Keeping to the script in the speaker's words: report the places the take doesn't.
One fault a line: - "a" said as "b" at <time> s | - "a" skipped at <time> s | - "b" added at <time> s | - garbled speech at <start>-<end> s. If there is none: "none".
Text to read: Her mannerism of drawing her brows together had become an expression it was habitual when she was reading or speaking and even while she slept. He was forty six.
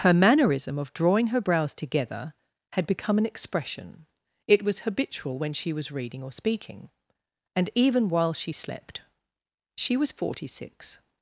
- "He" said as "She" at 9.8 s